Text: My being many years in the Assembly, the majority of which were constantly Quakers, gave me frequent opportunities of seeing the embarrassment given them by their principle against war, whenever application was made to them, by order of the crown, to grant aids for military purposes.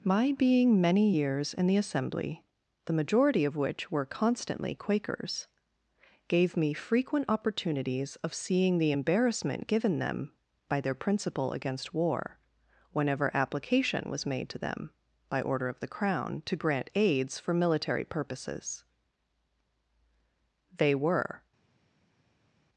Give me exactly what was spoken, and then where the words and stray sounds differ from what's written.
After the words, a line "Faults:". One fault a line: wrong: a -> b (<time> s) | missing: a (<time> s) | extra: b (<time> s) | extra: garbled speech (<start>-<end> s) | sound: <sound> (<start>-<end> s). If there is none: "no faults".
My being many years in the Assembly, the majority of which were constantly Quakers, gave me frequent opportunities of seeing the embarrassment given them by their principle against war, whenever application was made to them, by order of the crown, to grant aids for military purposes. They were
Faults:
extra: They were (20.8 s)